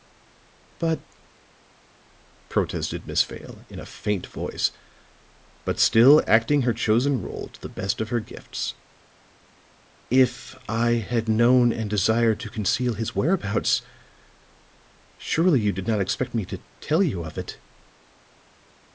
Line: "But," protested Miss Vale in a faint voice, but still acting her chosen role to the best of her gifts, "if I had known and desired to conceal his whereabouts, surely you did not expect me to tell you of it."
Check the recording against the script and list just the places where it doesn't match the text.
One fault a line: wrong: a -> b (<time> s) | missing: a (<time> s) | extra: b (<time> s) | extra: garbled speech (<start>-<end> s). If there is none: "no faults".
no faults